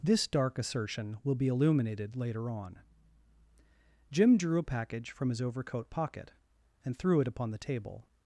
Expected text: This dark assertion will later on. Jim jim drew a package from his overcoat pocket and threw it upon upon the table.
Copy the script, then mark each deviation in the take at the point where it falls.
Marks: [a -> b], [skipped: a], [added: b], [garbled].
This dark assertion will [added: be illuminated] later on. Jim [skipped: jim] drew a package from his overcoat pocket and threw it upon [skipped: upon] the table.